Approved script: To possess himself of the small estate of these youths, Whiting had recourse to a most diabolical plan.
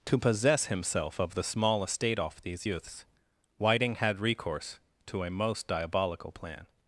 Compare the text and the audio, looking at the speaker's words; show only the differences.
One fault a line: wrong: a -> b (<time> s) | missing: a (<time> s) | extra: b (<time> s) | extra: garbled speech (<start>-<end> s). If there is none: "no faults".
wrong: of -> off (2.2 s)